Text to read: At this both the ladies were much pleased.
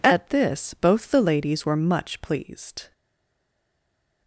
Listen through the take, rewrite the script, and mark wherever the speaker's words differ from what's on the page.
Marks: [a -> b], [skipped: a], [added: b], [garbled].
At this both the ladies were much pleased.